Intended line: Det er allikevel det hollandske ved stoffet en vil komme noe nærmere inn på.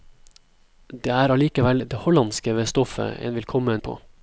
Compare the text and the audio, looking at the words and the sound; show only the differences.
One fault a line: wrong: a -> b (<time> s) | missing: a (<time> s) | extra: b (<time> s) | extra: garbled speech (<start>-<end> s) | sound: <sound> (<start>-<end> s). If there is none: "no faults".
missing: noe nærmere inn (3.8 s)